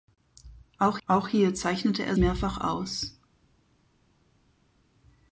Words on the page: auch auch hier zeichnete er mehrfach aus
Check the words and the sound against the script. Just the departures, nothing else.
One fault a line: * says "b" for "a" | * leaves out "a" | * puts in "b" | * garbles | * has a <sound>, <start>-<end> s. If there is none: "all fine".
all fine